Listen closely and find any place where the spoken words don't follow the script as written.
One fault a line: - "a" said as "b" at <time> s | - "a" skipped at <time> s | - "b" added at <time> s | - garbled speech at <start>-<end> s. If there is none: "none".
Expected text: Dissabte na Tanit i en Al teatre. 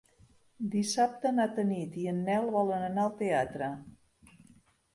- "Nel volen anar" added at 2.3 s